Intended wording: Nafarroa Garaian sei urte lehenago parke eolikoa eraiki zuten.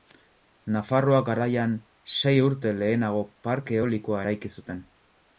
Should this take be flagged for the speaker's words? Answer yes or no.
no